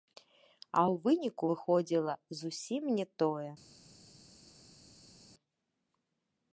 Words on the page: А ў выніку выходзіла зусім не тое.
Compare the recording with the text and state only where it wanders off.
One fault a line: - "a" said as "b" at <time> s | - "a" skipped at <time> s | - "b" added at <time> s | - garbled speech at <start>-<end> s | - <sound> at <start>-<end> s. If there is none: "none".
none